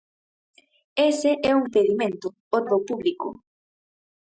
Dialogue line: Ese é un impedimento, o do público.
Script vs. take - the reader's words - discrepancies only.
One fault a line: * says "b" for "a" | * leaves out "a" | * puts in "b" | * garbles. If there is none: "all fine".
all fine